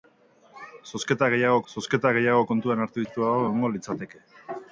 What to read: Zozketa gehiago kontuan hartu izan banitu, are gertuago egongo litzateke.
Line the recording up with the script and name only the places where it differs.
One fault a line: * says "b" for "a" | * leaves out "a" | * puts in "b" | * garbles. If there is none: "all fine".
* puts in "zozketa gehiago"
* leaves out "izan banitu are"